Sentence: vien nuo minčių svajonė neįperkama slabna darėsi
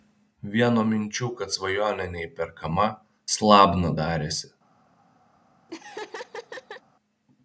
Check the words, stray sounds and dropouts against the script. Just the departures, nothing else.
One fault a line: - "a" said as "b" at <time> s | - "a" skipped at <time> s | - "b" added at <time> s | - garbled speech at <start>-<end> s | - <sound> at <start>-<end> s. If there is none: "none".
- "kad" added at 1.4 s
- laugh at 5.7-6.8 s